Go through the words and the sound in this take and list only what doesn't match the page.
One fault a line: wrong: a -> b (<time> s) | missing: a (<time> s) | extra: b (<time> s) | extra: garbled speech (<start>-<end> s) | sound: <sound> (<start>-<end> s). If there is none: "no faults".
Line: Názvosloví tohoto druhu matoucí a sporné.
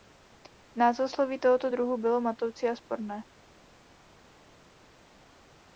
extra: bylo (2.0 s)